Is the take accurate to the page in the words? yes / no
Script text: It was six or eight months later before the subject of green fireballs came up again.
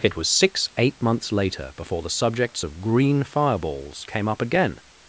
no